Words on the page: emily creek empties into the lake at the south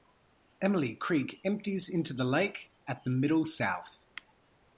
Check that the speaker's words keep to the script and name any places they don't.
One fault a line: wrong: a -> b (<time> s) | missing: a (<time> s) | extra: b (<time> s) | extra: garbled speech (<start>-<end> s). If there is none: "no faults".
extra: middle (3.1 s)